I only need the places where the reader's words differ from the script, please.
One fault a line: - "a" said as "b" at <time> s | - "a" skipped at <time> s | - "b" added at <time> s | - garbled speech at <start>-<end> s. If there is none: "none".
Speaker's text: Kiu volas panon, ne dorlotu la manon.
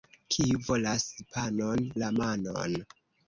- "ne dorlotu" skipped at 1.8 s